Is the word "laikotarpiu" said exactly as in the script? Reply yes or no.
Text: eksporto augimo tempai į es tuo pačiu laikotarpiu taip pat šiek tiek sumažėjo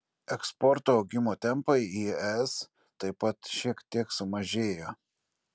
no